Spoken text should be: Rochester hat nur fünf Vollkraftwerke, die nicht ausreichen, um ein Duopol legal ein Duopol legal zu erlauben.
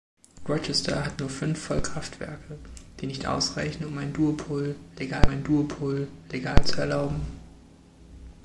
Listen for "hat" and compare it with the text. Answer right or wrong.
right